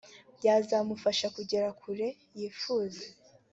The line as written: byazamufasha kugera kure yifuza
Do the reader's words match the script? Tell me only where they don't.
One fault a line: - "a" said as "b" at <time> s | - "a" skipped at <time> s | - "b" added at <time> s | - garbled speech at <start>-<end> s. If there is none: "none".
none